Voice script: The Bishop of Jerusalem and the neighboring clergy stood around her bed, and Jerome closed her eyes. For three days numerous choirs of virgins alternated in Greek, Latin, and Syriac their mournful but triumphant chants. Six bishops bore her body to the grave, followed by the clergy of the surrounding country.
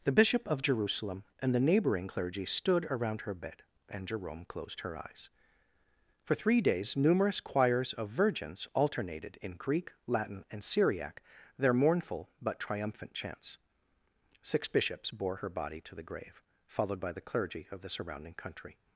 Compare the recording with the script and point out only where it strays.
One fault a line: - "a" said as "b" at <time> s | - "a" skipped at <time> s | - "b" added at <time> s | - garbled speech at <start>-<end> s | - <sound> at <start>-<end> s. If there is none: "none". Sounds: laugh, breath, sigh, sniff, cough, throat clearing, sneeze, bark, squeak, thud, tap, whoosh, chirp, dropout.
none